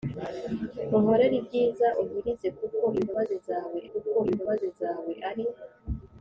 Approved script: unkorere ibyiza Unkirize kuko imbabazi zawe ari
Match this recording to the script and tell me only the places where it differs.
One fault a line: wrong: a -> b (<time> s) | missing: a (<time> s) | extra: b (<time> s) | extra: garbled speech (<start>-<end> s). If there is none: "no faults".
extra: kuko imbabazi zawe (3.9 s)